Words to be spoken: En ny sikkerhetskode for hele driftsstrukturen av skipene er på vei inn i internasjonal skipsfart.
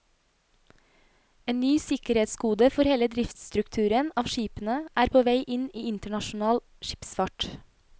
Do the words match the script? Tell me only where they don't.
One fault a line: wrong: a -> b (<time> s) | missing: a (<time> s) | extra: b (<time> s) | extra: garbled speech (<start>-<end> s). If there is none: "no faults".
no faults